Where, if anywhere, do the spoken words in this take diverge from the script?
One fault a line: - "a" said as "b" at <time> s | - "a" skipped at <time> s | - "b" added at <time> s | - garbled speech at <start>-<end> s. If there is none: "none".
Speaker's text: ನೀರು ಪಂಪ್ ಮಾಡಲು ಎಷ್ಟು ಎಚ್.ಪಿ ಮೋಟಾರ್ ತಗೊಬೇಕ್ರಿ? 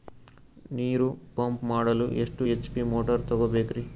none